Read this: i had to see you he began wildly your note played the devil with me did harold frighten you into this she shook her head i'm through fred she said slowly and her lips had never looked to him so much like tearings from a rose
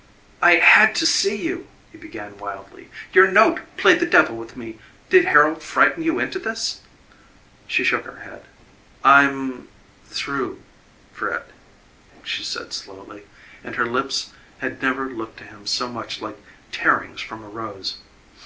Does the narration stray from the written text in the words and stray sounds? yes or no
no